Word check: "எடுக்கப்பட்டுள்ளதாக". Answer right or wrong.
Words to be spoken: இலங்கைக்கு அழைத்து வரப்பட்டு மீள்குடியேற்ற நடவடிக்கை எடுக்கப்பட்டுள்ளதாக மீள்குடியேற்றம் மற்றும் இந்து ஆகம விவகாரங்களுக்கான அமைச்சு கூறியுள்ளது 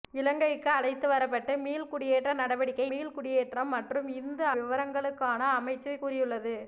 wrong